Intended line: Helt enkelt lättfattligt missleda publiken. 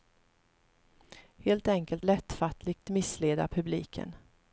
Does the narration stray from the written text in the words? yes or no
no